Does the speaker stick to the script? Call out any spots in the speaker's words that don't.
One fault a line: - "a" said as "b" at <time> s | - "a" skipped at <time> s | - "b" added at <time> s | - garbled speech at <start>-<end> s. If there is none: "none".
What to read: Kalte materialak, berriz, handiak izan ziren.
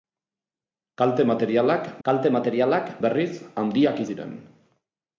- "kalte materialak" added at 2.1 s
- "izan" skipped at 4.1 s